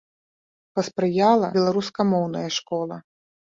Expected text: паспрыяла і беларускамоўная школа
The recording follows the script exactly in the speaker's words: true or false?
false